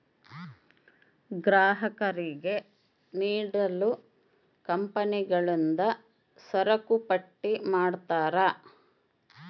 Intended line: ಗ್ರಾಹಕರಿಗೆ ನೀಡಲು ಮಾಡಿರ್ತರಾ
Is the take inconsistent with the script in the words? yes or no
yes